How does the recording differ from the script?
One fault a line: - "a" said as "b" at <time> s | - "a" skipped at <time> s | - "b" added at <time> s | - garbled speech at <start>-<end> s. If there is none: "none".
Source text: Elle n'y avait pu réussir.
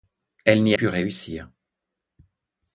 - "avait" skipped at 0.8 s